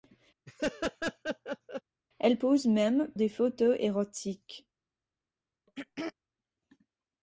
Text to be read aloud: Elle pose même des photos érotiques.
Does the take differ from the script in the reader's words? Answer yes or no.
no